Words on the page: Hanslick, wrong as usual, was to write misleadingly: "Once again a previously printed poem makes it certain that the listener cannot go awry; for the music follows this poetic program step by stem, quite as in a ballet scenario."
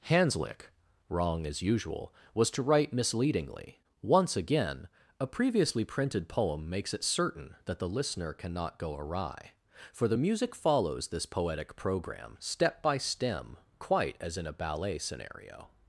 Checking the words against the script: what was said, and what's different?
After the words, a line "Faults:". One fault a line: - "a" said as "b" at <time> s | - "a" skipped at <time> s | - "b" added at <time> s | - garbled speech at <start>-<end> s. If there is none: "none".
Hanslick, wrong as usual, was to write misleadingly: "Once again a previously printed poem makes it certain that the listener cannot go awry; for the music follows this poetic program step by stem, quite as in a ballet scenario."
Faults:
none